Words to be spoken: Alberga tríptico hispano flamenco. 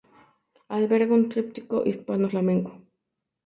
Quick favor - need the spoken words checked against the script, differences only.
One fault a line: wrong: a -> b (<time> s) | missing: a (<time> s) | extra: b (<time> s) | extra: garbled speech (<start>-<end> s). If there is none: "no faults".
extra: un (1.1 s)